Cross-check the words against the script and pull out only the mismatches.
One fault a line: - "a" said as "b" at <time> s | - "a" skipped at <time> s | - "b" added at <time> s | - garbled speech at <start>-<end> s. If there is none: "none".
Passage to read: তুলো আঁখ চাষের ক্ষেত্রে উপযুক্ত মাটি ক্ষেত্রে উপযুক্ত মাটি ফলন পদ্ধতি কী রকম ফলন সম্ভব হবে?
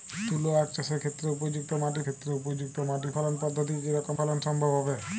none